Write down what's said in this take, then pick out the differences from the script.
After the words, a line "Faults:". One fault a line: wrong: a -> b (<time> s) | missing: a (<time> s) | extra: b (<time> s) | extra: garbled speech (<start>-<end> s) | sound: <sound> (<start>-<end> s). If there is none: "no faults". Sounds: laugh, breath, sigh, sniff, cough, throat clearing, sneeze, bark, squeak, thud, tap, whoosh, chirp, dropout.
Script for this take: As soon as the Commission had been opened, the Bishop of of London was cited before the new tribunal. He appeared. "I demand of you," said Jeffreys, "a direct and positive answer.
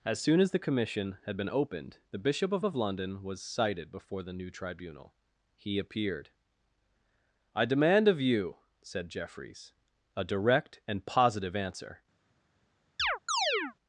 As soon as the Commission had been opened, the Bishop of of London was cited before the new tribunal. He appeared. "I demand of you," said Jeffreys, "a direct and positive answer.
Faults:
sound: chirp (13.0-13.8 s)